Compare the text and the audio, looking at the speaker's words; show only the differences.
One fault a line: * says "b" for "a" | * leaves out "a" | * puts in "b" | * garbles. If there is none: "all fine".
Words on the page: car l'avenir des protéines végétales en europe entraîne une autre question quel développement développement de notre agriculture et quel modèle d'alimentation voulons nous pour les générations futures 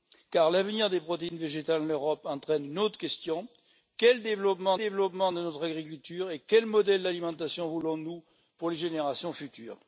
all fine